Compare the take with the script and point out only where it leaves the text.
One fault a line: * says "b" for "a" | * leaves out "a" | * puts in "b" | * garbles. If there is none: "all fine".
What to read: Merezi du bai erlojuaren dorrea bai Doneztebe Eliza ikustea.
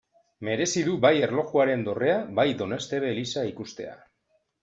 all fine